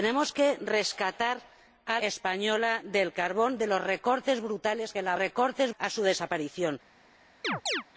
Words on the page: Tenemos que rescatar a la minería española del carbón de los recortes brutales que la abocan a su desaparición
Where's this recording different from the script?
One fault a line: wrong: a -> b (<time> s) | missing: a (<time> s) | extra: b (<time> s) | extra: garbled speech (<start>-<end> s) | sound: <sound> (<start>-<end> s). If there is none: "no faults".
missing: la minería (2.0 s)
wrong: abocan -> recortes (5.1 s)
sound: chirp (7.4-7.8 s)